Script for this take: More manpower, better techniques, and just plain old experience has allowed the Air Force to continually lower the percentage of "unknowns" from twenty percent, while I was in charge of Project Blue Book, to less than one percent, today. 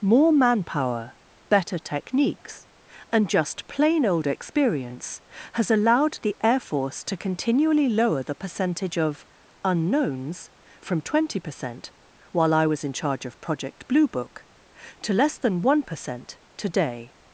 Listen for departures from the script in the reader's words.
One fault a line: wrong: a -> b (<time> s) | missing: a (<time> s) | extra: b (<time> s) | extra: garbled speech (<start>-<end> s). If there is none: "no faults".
no faults